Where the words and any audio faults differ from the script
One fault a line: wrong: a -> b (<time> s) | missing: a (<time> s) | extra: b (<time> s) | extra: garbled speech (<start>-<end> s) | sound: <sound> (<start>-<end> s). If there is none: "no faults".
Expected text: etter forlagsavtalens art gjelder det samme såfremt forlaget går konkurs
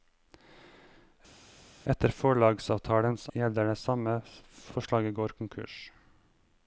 missing: art (3.2 s)
missing: såfremt (4.2 s)